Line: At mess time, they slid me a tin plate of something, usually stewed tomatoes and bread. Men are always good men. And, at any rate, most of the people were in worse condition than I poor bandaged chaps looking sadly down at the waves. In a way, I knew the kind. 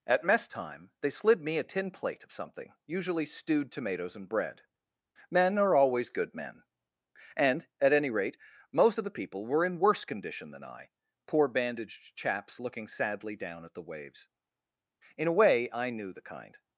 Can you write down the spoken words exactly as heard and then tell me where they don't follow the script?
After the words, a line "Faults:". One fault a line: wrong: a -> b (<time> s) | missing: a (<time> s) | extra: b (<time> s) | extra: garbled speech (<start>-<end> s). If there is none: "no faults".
At mess time, they slid me a tin plate of something, usually stewed tomatoes and bread. Men are always good men. And, at any rate, most of the people were in worse condition than I poor bandaged chaps looking sadly down at the waves. In a way, I knew the kind.
Faults:
no faults